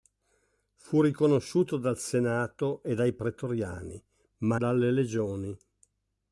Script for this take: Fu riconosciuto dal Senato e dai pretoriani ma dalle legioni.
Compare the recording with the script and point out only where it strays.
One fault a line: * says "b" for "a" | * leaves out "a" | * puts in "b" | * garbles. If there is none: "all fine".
all fine